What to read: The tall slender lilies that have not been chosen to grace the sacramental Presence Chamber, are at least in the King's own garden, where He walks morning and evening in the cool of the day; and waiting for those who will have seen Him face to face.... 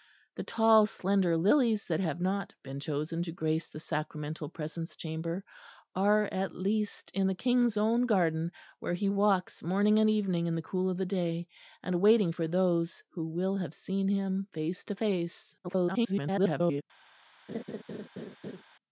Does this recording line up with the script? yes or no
no